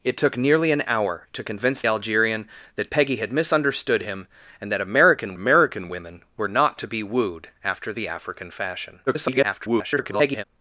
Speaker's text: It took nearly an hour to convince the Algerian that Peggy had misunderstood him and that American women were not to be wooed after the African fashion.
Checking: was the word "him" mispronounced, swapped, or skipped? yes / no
no